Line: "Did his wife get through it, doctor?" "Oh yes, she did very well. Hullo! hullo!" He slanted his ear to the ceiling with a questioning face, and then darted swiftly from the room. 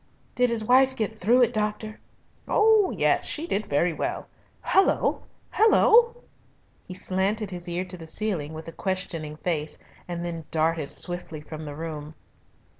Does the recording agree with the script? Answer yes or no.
yes